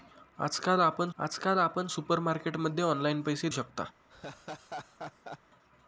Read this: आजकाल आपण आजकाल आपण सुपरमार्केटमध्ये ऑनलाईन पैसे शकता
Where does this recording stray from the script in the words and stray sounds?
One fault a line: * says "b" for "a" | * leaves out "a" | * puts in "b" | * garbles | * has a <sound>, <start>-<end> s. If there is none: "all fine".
* has a laugh, 4.1-5.4 s